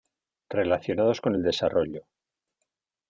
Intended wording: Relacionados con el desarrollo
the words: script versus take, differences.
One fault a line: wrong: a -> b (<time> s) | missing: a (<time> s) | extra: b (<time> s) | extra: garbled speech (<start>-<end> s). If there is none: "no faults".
no faults